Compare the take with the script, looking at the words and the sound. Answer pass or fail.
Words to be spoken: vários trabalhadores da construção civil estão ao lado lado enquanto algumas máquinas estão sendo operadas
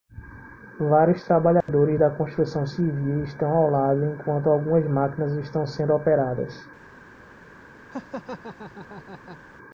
fail